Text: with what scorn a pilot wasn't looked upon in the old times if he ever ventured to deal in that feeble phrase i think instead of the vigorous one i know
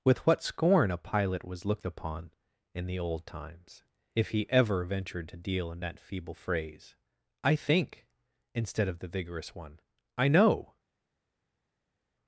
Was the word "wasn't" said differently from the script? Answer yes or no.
yes